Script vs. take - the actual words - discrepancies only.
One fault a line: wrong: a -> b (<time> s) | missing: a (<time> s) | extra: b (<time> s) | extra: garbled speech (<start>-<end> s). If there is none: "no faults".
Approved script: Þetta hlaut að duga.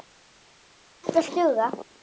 missing: hlaut (1.2 s)